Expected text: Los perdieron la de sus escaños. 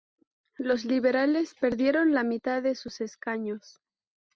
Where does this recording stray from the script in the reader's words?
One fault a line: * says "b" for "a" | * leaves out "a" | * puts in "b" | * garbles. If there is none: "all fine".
* puts in "liberales"
* puts in "mitad"